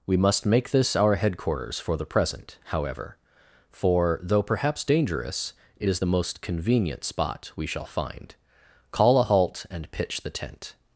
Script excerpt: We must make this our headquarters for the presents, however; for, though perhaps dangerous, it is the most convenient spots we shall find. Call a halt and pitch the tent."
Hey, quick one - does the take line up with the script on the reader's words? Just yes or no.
no